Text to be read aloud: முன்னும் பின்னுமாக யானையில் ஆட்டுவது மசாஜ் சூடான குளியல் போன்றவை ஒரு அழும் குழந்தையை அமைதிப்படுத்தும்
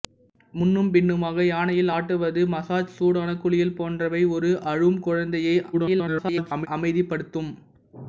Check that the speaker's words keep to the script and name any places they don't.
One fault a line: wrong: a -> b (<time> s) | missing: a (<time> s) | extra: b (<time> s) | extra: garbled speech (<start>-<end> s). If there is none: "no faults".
extra: garbled speech (5.7-6.7 s)